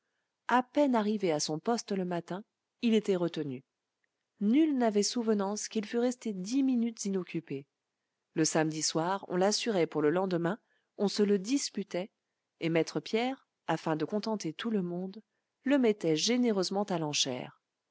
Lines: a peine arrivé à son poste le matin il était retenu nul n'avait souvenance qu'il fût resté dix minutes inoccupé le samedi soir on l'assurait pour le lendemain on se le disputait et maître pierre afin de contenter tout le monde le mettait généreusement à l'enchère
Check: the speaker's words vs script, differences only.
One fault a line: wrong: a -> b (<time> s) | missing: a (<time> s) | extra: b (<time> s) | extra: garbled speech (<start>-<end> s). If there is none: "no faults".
no faults